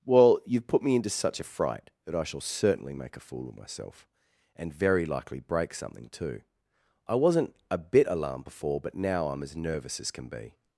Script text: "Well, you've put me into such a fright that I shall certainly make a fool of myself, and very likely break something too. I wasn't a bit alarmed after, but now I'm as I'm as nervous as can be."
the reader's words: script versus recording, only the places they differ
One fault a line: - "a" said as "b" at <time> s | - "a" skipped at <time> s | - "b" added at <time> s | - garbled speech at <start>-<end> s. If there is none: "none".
- "after" said as "before" at 8.4 s
- "I'm as" skipped at 9.6 s